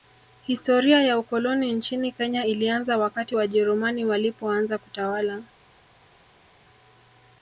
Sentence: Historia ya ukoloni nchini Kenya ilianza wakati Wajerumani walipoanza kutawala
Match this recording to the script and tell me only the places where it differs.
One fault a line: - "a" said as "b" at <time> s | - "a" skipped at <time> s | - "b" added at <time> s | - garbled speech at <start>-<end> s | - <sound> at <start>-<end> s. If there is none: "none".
none